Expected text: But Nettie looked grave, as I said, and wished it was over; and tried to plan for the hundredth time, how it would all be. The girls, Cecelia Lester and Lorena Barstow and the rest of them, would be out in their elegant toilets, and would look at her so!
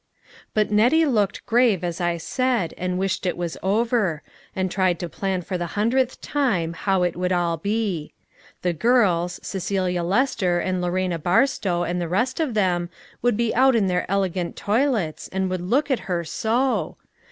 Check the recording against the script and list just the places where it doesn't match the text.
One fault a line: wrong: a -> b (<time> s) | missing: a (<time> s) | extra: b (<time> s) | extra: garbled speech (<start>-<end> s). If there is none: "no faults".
no faults